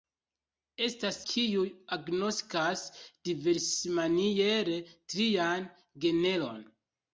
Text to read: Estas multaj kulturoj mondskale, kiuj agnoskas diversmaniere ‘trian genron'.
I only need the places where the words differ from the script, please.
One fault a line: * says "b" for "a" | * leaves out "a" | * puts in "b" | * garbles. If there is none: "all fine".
* leaves out "multaj kulturoj mondskale"